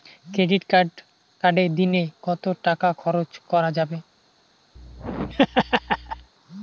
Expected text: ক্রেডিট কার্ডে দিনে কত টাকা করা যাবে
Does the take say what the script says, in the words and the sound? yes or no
no